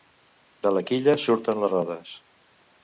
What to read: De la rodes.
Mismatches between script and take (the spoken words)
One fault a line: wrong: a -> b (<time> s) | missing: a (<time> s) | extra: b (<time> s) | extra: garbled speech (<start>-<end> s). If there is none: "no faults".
extra: quilla surten les (0.9 s)